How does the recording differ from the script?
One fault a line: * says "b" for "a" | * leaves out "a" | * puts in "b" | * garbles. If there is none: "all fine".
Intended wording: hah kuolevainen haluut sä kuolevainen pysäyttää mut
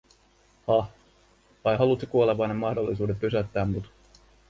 * says "vai" for "kuolevainen"
* puts in "mahdollisuuden"